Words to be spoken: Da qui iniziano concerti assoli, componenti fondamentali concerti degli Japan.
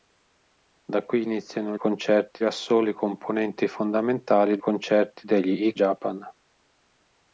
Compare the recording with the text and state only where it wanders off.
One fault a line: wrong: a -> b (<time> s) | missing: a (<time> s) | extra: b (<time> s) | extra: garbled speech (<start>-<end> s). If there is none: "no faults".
no faults